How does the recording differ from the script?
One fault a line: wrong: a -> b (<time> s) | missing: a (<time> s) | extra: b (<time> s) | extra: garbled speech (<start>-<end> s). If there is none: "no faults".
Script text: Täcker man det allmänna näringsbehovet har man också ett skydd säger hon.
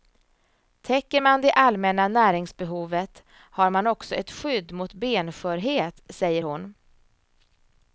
extra: mot benskörhet (4.7 s)